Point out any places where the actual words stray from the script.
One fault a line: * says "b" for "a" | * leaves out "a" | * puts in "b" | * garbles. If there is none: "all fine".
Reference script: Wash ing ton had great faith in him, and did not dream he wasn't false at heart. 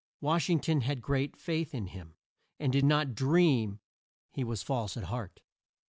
* says "was" for "wasn't"